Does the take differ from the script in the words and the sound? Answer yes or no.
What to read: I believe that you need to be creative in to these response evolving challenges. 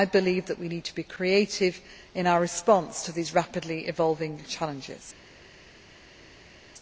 yes